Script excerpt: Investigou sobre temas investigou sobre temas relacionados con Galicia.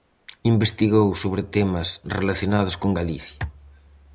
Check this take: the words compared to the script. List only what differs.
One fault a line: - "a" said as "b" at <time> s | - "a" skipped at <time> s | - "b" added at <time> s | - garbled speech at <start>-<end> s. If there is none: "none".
- "investigou sobre temas" skipped at 1.9 s